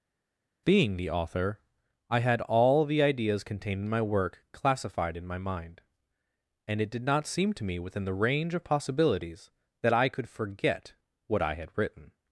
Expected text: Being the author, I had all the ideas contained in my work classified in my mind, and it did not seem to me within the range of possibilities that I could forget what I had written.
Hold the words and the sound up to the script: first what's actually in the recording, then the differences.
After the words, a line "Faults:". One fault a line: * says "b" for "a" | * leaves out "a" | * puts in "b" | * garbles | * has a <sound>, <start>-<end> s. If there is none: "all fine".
Being the author, I had all the ideas contained in my work classified in my mind, and it did not seem to me within the range of possibilities that I could forget what I had written.
Faults:
all fine